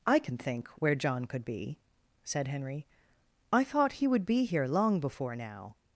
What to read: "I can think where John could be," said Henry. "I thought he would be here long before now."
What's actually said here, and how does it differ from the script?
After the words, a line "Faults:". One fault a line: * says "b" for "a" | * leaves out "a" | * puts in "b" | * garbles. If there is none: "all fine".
"I can think where John could be," said Henry. "I thought he would be here long before now."
Faults:
all fine